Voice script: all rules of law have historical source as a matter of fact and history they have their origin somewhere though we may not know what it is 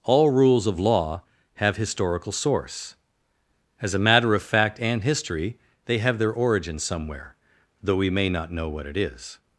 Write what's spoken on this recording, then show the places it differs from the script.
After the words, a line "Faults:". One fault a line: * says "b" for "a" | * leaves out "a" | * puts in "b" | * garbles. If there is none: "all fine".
all rules of law have historical source as a matter of fact and history they have their origin somewhere though we may not know what it is
Faults:
all fine